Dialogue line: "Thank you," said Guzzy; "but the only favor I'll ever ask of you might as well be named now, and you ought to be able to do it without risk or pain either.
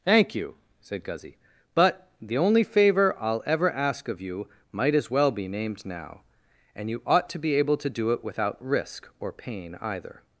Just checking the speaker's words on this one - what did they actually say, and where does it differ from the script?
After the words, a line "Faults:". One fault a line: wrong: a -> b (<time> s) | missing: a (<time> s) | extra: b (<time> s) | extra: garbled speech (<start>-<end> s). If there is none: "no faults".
"Thank you," said Guzzy; "but the only favor I'll ever ask of you might as well be named now, and you ought to be able to do it without risk or pain either.
Faults:
no faults